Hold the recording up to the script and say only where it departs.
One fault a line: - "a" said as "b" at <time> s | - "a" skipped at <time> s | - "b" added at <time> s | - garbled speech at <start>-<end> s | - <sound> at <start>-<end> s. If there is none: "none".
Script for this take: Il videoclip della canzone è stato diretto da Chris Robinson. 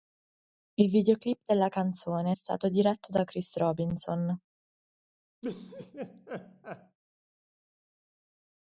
- laugh at 5.4-7.0 s